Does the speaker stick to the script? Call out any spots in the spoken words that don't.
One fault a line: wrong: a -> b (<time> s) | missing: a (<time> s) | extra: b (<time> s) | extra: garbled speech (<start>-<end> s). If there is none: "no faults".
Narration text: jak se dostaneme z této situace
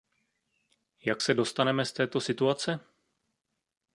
no faults